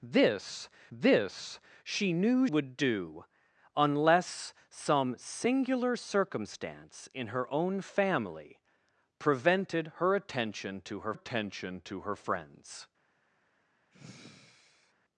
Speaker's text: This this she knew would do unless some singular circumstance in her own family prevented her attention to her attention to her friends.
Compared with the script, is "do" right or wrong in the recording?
right